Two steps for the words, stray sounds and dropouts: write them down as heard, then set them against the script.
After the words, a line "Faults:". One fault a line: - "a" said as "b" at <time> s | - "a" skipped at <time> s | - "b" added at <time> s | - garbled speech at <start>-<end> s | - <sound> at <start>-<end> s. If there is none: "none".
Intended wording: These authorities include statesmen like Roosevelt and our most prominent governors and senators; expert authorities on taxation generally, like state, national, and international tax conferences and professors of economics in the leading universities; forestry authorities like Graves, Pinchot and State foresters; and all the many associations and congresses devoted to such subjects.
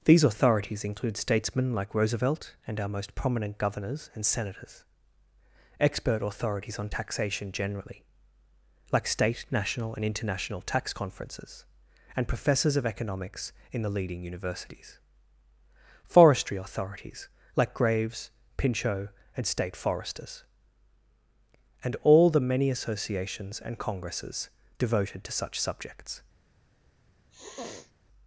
These authorities include statesmen like Roosevelt and our most prominent governors and senators; expert authorities on taxation generally, like state, national, and international tax conferences and professors of economics in the leading universities; forestry authorities like Graves, Pinchot and State foresters; and all the many associations and congresses devoted to such subjects.
Faults:
- sniff at 27.3-27.9 s